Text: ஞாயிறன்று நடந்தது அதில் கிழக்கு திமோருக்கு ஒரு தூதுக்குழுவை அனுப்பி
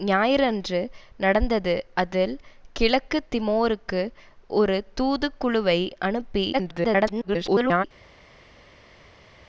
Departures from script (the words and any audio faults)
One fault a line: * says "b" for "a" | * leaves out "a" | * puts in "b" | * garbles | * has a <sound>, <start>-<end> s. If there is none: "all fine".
* garbles